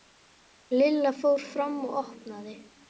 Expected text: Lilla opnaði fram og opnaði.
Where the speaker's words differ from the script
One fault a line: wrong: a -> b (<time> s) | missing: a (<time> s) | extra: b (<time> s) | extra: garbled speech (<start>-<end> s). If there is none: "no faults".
wrong: opnaði -> fór (1.2 s)